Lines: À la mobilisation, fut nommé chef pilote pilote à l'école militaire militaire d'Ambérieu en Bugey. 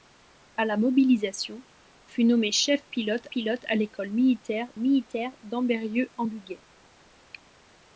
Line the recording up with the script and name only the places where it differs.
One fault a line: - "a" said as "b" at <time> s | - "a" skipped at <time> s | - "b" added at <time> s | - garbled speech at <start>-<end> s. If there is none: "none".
none